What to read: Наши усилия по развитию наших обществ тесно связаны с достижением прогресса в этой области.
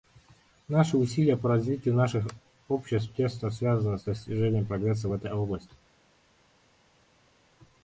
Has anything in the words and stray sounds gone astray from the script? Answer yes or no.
no